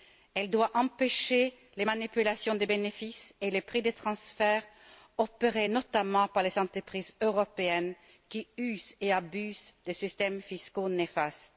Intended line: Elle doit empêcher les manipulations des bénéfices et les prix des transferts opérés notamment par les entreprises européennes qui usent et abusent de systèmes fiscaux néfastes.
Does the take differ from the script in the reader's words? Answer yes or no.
no